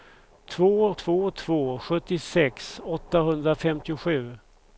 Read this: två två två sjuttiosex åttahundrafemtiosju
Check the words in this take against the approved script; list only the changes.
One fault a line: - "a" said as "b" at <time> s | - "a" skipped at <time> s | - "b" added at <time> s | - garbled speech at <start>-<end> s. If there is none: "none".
none